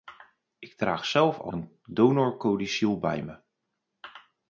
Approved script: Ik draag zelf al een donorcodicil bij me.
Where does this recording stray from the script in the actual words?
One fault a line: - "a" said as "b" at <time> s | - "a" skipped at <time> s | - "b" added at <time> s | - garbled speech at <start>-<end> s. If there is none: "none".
none